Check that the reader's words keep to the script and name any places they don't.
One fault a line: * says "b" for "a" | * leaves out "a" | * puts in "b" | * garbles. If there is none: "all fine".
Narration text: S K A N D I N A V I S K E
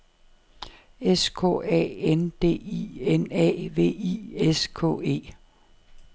all fine